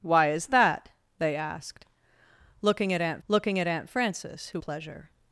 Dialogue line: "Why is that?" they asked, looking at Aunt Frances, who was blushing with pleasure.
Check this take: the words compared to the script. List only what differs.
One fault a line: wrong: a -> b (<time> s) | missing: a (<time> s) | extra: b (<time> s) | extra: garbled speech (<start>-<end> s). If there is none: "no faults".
wrong: Frances who was blushing with -> looking at Aunt Frances who (3.3 s)